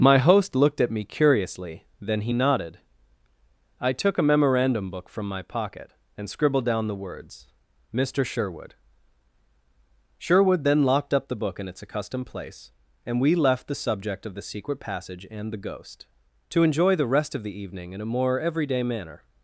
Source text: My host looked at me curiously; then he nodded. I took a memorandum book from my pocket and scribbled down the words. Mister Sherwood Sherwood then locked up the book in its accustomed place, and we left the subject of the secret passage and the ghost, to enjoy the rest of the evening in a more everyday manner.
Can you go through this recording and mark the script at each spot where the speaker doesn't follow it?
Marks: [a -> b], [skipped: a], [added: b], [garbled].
My host looked at me curiously; then he nodded. I took a memorandum book from my pocket and scribbled down the words. Mister Sherwood Sherwood then locked up the book in its accustomed place, and we left the subject of the secret passage and the ghost, to enjoy the rest of the evening in a more everyday manner.